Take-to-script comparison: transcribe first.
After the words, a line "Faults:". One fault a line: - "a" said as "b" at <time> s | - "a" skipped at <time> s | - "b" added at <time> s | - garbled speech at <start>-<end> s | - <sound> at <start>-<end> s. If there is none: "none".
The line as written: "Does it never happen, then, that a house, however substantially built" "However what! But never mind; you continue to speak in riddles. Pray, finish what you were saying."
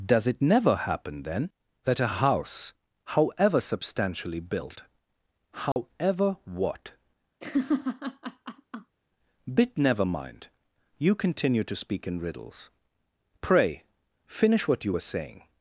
"Does it never happen, then, that a house, however substantially built" "However what! Bit never mind; you continue to speak in riddles. Pray, finish what you were saying."
Faults:
- dropout at 5.7-5.8 s
- laugh at 7.4-9.0 s
- "But" said as "Bit" at 9.5 s